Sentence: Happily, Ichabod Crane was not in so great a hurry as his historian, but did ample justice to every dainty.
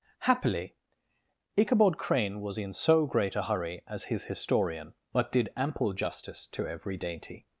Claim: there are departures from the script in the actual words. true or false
true